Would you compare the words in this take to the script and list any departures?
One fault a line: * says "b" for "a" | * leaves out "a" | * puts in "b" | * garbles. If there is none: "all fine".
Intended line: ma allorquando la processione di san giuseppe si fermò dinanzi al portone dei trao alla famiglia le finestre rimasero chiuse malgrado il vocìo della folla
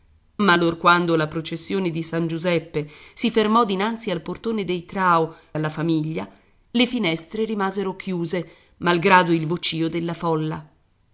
all fine